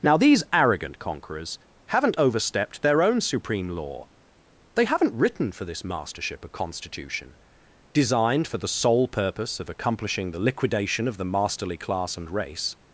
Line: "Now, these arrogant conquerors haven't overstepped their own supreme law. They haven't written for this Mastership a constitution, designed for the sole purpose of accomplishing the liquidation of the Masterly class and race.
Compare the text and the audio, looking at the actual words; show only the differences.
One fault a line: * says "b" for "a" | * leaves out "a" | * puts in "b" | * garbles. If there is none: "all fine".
all fine